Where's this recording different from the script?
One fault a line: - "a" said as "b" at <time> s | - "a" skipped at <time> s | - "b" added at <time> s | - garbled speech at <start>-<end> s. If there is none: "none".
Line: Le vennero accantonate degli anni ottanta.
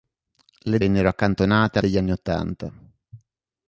none